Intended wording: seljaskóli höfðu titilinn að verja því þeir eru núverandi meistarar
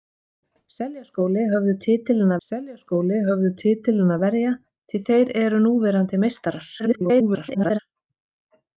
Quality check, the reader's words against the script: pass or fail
fail